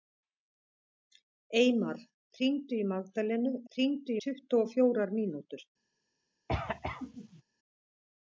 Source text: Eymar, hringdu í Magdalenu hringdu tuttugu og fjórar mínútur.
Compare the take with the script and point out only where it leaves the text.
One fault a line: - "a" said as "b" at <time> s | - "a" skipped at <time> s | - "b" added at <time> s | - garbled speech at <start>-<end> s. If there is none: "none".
none